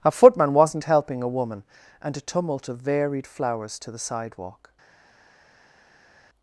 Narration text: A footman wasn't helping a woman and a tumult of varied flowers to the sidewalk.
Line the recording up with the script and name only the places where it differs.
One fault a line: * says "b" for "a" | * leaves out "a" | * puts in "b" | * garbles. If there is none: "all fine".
all fine